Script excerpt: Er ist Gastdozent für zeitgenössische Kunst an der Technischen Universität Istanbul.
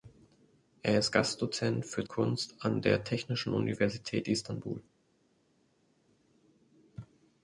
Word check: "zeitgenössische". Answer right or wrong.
wrong